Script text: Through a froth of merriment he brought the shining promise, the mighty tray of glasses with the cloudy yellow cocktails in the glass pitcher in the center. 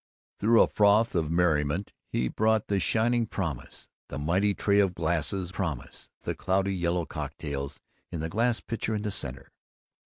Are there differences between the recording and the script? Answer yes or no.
yes